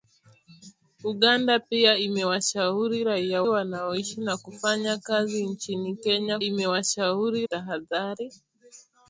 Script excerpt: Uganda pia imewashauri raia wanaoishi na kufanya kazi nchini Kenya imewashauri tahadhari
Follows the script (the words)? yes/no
yes